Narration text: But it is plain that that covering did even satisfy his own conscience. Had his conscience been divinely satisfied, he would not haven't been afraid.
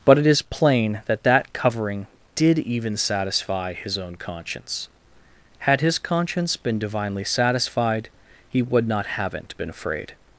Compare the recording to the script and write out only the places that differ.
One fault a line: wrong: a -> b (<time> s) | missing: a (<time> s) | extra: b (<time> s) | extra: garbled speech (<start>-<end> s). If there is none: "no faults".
no faults